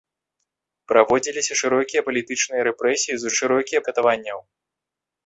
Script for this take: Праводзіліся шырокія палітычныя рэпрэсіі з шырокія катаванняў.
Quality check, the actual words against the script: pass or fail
pass